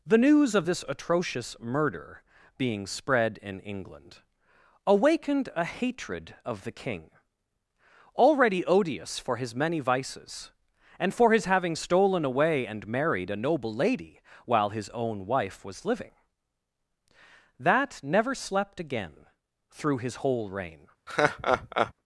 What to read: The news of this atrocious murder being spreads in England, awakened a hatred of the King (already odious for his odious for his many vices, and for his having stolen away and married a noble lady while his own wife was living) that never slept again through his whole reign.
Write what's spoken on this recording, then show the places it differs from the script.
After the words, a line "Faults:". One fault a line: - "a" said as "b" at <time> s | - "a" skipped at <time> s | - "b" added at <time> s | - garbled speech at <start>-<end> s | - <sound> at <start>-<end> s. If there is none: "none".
The news of this atrocious murder being spread in England, awakened a hatred of the King (already odious for his many vices, and for his having stolen away and married a noble lady while his own wife was living) that never slept again through his whole reign.
Faults:
- "spreads" said as "spread" at 2.9 s
- "odious for his" skipped at 9.5 s
- laugh at 21.1-21.9 s